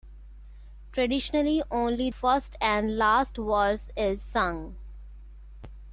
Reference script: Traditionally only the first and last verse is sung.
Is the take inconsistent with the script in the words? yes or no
yes